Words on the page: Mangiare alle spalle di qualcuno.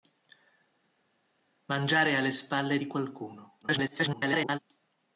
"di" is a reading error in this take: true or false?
false